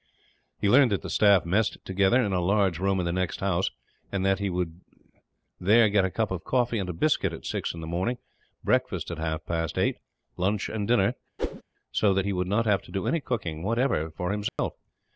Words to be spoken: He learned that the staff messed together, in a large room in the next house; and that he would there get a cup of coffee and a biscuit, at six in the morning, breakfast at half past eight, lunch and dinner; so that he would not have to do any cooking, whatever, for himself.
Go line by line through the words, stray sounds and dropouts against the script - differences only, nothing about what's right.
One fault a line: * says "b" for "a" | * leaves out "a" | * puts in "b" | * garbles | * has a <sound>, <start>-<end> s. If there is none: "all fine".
* has a whoosh, 11.4-11.6 s
* has a dropout, 14.5-14.6 s